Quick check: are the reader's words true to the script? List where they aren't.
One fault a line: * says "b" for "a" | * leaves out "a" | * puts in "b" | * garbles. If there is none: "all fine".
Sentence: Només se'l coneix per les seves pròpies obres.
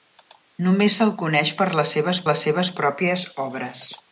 * puts in "les seves"